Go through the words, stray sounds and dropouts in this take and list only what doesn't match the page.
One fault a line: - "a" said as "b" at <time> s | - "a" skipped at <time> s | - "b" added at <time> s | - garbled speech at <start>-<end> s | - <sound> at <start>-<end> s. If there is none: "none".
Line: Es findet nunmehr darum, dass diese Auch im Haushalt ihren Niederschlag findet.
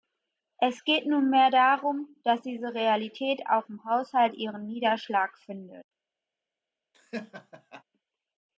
- "findet" said as "geht" at 0.8 s
- "Realität" added at 2.7 s
- laugh at 6.9-7.8 s